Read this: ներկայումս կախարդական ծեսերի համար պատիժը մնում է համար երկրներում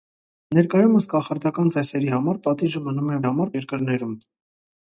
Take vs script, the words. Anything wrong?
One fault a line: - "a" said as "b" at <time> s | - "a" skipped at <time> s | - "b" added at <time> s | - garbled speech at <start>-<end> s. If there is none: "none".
none